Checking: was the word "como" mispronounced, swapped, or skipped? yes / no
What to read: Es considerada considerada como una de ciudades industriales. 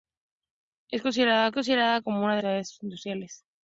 no